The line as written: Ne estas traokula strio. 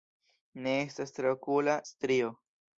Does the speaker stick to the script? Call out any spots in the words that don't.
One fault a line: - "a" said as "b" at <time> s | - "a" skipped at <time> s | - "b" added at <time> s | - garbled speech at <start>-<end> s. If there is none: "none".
none